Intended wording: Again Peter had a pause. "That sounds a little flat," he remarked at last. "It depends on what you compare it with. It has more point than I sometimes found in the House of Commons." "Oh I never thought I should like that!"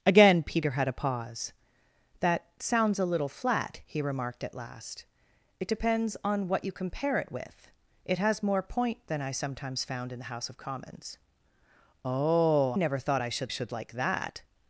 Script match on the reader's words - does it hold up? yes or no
no